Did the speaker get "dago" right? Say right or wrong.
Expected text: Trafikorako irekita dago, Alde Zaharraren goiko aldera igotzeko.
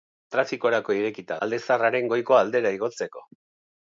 wrong